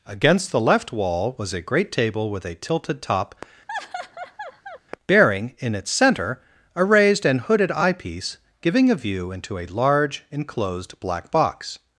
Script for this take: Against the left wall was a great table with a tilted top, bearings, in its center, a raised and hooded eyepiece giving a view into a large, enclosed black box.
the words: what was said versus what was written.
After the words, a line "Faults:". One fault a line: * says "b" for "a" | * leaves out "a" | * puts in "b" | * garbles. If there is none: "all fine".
Against the left wall was a great table with a tilted top, bearing, in its center, a raised and hooded eyepiece giving a view into a large, enclosed black box.
Faults:
* says "bearing" for "bearings"